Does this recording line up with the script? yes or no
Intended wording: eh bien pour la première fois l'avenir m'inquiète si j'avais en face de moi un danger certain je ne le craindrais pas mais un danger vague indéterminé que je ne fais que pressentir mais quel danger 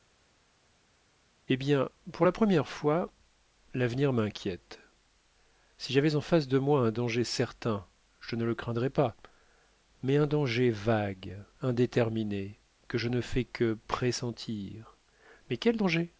yes